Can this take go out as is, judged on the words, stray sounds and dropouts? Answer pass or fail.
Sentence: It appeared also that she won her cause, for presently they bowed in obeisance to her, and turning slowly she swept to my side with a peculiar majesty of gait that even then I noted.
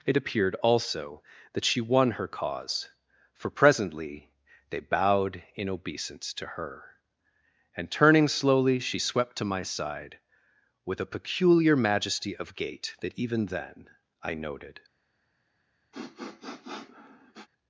fail